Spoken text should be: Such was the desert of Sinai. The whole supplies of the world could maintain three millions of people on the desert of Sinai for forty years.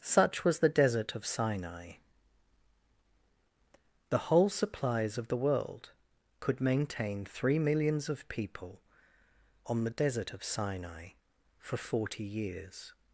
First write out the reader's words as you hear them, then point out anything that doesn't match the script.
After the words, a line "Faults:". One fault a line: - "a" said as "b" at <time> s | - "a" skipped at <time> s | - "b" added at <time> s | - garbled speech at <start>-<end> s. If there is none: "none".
Such was the desert of Sinai. The whole supplies of the world could maintain three millions of people on the desert of Sinai for forty years.
Faults:
none